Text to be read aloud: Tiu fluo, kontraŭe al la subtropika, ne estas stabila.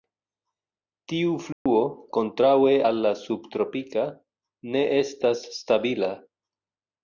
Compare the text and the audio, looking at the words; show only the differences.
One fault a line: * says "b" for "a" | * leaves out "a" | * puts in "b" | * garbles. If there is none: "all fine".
all fine